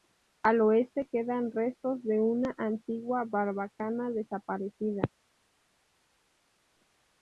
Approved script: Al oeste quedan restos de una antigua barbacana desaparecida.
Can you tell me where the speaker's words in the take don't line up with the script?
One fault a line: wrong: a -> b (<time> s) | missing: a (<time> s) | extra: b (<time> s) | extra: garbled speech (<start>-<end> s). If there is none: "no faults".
no faults